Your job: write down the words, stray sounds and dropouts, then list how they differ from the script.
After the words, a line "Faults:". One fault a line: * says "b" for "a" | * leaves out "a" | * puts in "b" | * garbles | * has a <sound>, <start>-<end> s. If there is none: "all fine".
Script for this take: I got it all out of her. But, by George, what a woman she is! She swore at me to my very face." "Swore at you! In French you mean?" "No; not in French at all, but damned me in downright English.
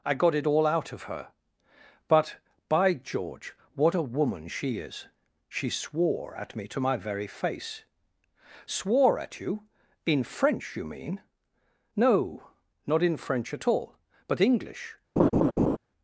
I got it all out of her. But, by George, what a woman she is! She swore at me to my very face." "Swore at you! In French you mean?" "No; not in French at all, but English.
Faults:
* leaves out "damned me in downright"
* has a laugh, 15.2-15.8 s